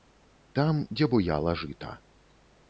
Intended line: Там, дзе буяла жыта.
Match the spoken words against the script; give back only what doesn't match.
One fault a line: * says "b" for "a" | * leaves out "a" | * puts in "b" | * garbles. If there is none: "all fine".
all fine